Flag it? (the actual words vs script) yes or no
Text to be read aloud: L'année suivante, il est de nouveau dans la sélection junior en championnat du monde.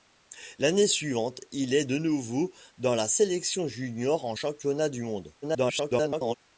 yes